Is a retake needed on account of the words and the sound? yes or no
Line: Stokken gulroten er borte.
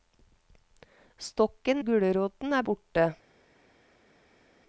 no